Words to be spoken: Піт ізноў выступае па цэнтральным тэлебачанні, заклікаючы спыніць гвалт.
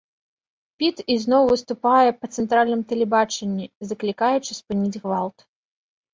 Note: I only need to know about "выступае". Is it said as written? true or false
true